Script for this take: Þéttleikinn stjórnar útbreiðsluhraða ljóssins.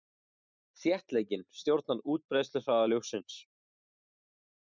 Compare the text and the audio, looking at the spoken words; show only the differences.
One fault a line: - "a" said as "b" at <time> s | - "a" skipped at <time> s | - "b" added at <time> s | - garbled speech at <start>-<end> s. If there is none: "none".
none